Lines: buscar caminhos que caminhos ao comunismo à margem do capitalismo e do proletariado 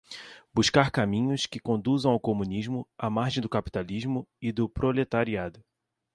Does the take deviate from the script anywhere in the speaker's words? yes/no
yes